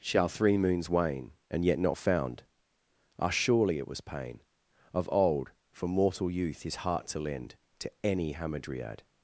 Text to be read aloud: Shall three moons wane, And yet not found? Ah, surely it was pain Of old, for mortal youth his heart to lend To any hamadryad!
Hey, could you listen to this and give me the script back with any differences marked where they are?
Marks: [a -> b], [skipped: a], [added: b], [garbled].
Shall three moons wane, And yet not found? Ah, surely it was pain Of old, for mortal youth his heart to lend To any hamadryad!